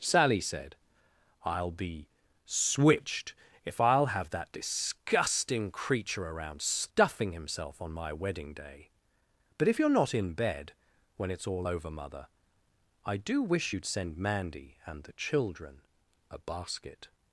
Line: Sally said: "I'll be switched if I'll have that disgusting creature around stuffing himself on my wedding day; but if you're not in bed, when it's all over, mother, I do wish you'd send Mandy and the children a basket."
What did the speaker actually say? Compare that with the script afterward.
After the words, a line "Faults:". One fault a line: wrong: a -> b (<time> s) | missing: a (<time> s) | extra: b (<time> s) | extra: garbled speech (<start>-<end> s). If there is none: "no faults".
Sally said: "I'll be switched if I'll have that disgusting creature around stuffing himself on my wedding day; but if you're not in bed, when it's all over, mother, I do wish you'd send Mandy and the children a basket."
Faults:
no faults